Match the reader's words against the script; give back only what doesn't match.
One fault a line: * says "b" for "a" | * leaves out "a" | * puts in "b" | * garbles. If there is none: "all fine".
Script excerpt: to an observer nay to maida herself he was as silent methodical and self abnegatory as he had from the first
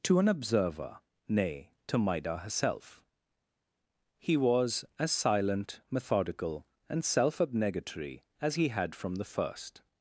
all fine